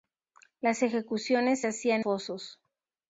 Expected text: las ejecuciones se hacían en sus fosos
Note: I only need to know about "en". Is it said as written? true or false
false